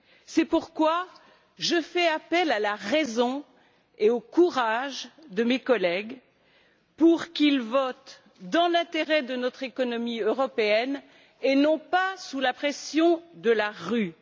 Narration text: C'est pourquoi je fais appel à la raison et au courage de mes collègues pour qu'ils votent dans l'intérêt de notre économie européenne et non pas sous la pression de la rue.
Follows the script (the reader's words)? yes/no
yes